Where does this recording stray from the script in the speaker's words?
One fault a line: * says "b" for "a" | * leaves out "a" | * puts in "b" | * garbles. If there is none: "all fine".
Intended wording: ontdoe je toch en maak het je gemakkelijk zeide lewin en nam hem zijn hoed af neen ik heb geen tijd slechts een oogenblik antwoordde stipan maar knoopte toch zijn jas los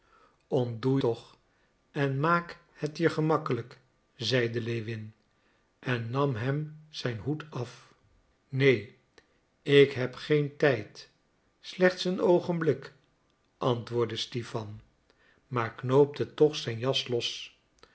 * leaves out "je"